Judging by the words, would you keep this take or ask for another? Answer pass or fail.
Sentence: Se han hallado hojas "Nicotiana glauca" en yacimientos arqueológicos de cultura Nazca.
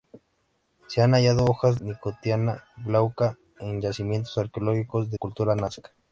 pass